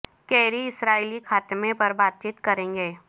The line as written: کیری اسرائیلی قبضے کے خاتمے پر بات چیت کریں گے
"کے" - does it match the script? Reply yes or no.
no